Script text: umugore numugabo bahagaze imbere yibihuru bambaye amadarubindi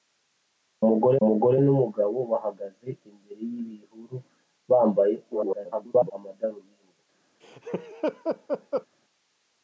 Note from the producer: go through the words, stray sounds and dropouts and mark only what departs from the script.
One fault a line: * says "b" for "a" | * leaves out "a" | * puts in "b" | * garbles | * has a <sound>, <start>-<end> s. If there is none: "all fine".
* puts in "umugore"
* garbles
* has a laugh, 7.4-8.9 s